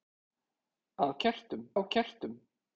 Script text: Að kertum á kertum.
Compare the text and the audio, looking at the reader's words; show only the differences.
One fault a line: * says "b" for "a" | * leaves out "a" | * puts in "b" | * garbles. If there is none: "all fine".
all fine